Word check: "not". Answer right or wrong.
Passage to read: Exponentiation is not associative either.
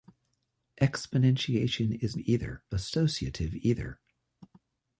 wrong